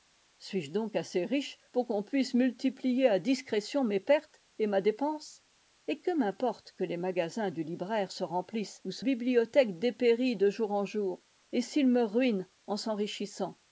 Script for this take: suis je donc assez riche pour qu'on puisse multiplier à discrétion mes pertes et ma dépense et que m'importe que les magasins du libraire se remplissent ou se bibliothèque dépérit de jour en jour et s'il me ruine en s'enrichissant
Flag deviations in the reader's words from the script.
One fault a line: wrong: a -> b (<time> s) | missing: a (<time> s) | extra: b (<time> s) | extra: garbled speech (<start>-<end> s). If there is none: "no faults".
no faults